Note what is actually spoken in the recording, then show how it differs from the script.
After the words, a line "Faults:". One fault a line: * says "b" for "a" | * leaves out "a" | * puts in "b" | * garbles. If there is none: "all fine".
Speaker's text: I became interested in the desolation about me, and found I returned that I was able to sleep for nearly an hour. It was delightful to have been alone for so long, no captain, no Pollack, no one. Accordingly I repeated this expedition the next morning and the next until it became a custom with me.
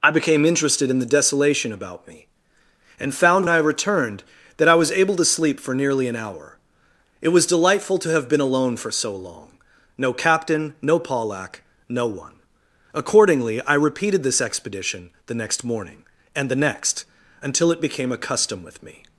I became interested in the desolation about me, and found I returned that I was able to sleep for nearly an hour. It was delightful to have been alone for so long, no captain, no Pollack, no one. Accordingly I repeated this expedition the next morning and the next until it became a custom with me.
Faults:
all fine